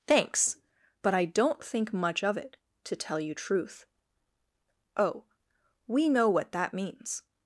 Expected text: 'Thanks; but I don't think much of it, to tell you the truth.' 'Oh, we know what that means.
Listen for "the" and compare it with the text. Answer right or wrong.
wrong